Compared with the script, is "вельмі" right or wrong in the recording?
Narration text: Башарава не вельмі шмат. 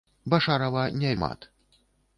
wrong